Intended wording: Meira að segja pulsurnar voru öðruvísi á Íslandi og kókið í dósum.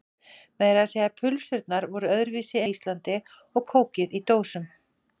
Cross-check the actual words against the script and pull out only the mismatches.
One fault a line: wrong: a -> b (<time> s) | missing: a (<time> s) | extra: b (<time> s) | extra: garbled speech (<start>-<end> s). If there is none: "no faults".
no faults